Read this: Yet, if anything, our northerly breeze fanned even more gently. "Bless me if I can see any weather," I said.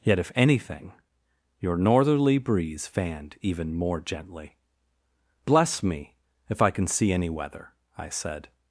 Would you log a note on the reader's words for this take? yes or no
yes